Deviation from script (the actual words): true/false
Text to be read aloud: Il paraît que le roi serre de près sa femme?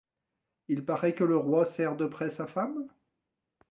false